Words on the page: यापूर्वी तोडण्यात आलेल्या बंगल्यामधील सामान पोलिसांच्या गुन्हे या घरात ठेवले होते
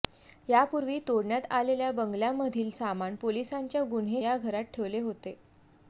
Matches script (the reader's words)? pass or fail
pass